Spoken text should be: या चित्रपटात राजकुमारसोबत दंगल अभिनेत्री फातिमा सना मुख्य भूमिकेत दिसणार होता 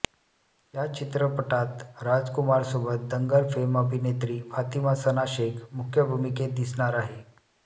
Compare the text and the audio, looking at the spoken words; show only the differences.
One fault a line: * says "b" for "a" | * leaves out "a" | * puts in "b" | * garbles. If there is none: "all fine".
* puts in "फेम"
* puts in "शेख"
* says "आहे" for "होता"